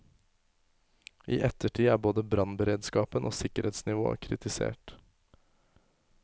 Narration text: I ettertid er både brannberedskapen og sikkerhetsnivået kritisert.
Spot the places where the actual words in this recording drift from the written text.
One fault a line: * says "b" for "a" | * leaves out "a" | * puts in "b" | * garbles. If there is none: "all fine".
all fine